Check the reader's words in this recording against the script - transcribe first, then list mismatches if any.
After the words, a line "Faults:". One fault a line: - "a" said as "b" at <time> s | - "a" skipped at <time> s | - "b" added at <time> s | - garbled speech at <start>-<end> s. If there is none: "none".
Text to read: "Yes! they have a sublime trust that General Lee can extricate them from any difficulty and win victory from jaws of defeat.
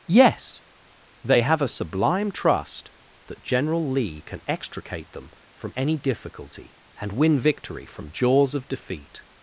"Yes! they have a sublime trust that General Lee can extricate them from any difficulty and win victory from jaws of defeat.
Faults:
none